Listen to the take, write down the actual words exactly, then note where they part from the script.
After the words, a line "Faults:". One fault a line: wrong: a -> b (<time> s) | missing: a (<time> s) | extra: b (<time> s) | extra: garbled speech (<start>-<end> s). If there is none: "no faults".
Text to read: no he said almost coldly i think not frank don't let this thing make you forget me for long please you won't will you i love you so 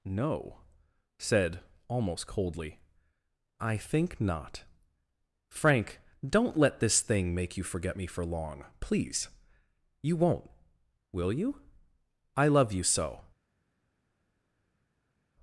no said almost coldly i think not frank don't let this thing make you forget me for long please you won't will you i love you so
Faults:
missing: he (0.6 s)